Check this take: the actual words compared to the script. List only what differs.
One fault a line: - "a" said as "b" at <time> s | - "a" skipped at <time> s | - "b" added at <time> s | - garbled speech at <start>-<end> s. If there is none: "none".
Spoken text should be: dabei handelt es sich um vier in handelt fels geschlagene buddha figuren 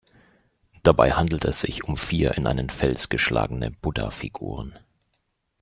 - "handelt" said as "einen" at 2.5 s